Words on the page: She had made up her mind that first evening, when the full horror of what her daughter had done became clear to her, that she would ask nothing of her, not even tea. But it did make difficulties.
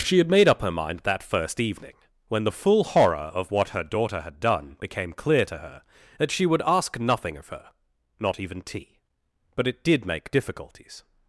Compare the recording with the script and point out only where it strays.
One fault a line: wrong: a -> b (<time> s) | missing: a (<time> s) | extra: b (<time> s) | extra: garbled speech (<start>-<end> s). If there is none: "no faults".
no faults